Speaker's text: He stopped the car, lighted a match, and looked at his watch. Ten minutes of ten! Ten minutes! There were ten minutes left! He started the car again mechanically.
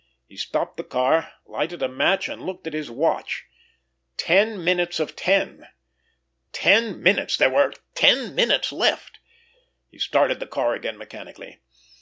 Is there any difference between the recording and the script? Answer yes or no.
no